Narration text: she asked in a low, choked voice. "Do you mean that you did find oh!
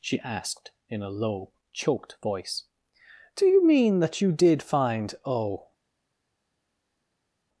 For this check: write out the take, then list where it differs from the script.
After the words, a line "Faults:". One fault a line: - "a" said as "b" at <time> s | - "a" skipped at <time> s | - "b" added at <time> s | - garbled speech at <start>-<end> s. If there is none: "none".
she asked in a low, choked voice. "Do you mean that you did find oh!
Faults:
none